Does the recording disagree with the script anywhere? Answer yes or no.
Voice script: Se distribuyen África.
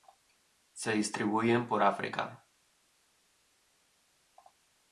yes